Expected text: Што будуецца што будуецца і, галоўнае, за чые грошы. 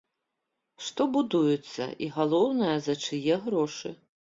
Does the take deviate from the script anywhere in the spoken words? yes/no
yes